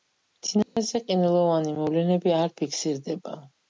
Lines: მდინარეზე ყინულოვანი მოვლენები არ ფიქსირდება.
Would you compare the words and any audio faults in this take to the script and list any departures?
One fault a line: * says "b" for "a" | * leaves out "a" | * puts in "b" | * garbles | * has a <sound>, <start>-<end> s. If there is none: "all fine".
* has a dropout, 0.6-0.8 s